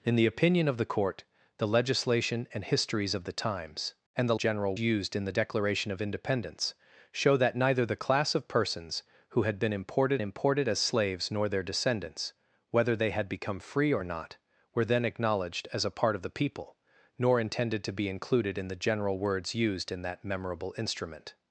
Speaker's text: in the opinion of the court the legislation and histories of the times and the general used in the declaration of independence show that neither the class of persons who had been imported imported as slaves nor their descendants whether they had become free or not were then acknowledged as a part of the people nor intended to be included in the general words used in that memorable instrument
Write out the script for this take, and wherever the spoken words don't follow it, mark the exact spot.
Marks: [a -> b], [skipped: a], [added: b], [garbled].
in the opinion of the court the legislation and histories of the times and the general used in the declaration of independence show that neither the class of persons who had been imported imported as slaves nor their descendants whether they had become free or not were then acknowledged as a part of the people nor intended to be included in the general words used in that memorable instrument